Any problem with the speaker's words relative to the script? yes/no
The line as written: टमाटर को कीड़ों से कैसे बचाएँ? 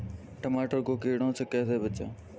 no